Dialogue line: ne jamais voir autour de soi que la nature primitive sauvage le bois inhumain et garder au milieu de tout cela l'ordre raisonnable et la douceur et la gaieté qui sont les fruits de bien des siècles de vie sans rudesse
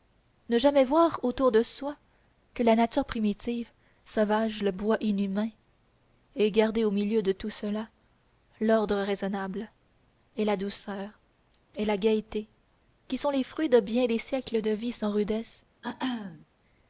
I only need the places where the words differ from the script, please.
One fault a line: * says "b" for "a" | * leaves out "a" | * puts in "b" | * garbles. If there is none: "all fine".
all fine